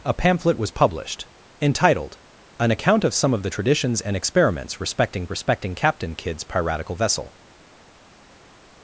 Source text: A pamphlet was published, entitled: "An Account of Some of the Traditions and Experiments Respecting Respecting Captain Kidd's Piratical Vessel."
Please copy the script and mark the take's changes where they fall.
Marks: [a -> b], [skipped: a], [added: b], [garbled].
A pamphlet was published, entitled: "An Account of Some of the Traditions and Experiments Respecting Respecting Captain Kidd's Piratical Vessel."